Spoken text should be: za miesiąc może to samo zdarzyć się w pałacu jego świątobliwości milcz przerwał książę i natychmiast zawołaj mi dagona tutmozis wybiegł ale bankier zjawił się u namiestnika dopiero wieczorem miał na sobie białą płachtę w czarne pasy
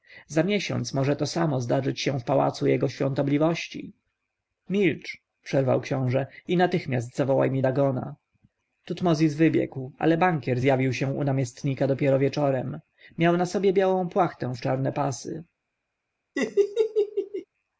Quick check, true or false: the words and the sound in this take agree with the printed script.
false